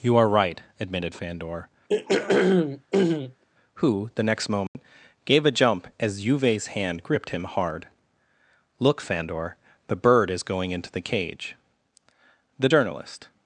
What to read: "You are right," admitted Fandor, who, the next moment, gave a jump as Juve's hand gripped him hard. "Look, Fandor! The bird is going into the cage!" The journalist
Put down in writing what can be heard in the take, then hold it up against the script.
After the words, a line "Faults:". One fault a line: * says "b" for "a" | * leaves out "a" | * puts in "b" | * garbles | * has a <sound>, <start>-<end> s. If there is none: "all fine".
"You are right," admitted Fandor, who, the next moment, gave a jump as Juve's hand gripped him hard. "Look, Fandor! The bird is going into the cage!" The journalist
Faults:
* has a throat clearing, 1.9-3.4 s
* has a dropout, 4.7-4.7 s